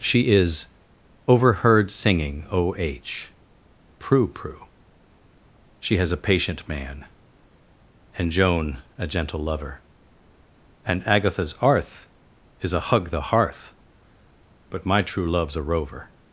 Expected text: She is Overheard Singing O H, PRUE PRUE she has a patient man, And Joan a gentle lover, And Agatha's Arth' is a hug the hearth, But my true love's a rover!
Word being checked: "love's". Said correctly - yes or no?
yes